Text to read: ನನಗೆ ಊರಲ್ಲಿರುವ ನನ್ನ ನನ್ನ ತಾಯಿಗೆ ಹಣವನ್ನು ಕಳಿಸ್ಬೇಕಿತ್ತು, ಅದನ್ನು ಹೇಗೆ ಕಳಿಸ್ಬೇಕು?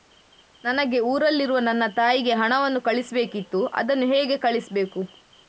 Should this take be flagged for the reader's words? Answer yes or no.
yes